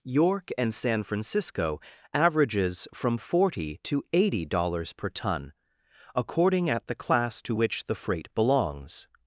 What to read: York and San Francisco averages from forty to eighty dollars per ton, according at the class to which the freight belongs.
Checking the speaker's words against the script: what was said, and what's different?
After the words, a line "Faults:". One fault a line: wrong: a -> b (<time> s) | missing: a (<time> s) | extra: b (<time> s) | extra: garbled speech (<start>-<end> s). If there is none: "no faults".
York and San Francisco averages from forty to eighty dollars per ton, according at the class to which the freight belongs.
Faults:
no faults